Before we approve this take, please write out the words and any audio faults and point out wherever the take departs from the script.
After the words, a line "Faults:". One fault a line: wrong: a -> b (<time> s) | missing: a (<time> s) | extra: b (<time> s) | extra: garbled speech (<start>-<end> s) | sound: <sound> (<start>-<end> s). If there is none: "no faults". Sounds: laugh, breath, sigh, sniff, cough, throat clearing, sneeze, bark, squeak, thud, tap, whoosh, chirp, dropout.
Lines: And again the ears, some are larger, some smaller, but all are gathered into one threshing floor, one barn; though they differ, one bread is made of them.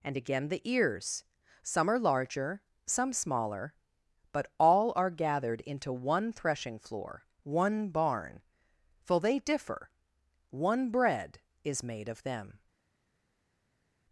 And again the ears, some are larger, some smaller, but all are gathered into one threshing floor, one barn; for they differ, one bread is made of them.
Faults:
wrong: though -> for (9.0 s)